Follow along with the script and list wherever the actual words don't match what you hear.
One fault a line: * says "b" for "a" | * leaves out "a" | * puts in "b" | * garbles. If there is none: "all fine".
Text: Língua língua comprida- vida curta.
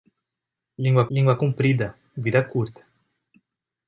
all fine